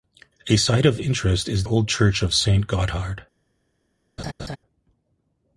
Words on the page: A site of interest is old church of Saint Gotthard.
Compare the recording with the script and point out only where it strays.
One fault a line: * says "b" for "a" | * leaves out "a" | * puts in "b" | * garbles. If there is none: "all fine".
all fine